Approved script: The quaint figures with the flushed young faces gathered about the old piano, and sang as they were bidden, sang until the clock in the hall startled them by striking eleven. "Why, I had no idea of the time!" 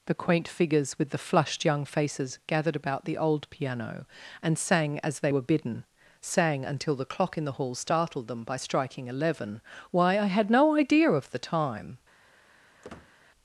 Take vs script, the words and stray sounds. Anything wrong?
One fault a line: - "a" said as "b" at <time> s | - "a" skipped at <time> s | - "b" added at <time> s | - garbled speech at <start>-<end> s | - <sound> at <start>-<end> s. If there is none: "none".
- squeak at 12.8-13.1 s